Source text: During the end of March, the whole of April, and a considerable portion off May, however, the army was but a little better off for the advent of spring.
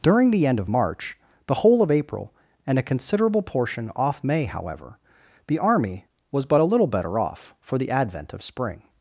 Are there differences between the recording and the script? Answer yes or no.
no